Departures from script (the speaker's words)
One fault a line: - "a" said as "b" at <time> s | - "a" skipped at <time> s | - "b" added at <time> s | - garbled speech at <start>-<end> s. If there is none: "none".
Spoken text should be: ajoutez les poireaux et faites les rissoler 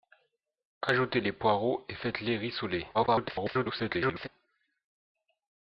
- garbled speech at 2.9-4.3 s